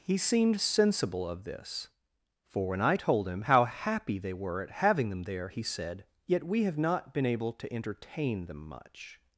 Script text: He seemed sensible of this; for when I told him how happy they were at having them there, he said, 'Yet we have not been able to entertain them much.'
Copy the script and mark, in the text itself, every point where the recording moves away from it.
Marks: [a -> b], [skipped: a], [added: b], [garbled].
He seemed sensible of this; for when I told him how happy they were at having them there, he said, 'Yet we have not been able to entertain them much.'